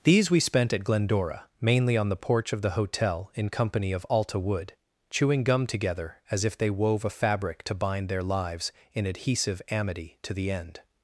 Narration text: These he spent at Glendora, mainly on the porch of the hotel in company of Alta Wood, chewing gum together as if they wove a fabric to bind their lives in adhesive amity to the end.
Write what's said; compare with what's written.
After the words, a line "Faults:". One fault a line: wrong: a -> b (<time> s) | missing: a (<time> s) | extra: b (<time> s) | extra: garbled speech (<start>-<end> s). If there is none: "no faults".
These we spent at Glendora, mainly on the porch of the hotel in company of Alta Wood, chewing gum together as if they wove a fabric to bind their lives in adhesive amity to the end.
Faults:
wrong: he -> we (0.3 s)